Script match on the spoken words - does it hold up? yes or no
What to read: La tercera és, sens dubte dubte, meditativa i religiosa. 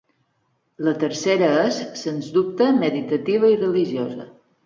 no